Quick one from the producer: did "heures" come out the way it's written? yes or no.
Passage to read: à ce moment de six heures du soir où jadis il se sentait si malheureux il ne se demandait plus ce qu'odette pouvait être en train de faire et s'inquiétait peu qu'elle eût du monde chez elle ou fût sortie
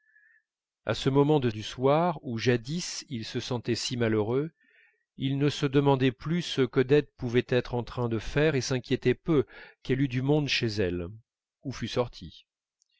no